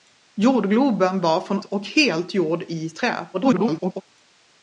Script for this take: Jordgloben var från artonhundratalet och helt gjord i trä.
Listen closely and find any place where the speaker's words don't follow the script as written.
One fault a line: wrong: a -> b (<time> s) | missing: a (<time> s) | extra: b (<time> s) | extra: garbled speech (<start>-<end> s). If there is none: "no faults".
missing: artonhundratalet (1.6 s)
extra: garbled speech (3.3-4.0 s)